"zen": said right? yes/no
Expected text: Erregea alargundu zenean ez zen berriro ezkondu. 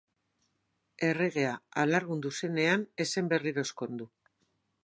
yes